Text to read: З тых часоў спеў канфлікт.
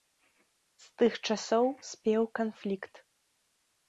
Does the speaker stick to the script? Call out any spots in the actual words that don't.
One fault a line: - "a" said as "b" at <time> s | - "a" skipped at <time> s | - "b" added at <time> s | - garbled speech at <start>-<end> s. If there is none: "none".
none